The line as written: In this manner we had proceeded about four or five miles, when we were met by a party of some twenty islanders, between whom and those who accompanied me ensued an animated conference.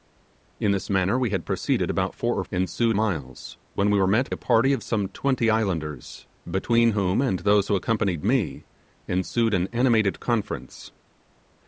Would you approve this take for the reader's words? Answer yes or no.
no